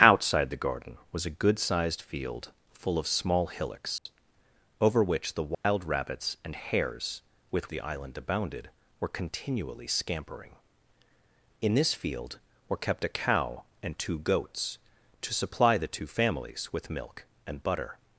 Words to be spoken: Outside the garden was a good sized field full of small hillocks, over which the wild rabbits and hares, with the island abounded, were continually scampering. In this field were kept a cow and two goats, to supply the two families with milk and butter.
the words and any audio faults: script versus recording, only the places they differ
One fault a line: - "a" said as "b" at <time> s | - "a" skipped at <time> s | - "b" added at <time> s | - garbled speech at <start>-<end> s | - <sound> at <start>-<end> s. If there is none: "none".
- dropout at 4.0-4.1 s
- dropout at 5.5-5.6 s